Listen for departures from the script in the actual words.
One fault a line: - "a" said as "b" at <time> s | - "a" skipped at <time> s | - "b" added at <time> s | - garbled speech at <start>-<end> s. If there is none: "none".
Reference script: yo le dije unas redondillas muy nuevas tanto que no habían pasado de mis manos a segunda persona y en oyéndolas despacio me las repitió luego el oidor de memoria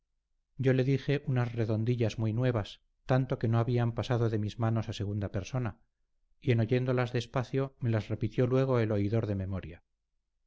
none